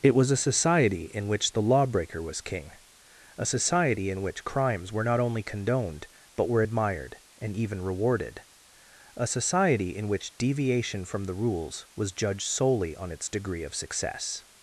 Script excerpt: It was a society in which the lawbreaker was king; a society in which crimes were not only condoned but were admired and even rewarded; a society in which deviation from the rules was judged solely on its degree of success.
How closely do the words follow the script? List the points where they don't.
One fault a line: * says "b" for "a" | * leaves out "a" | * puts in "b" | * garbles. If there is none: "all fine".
all fine